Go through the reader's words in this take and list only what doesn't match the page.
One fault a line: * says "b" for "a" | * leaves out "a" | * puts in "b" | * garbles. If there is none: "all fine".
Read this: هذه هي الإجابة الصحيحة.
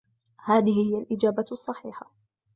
all fine